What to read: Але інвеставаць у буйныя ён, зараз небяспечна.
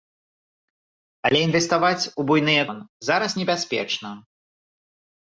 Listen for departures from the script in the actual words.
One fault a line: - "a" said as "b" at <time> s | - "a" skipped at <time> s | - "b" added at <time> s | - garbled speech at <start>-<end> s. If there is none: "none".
none